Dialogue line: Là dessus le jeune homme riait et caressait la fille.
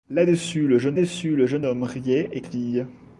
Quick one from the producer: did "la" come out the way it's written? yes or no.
no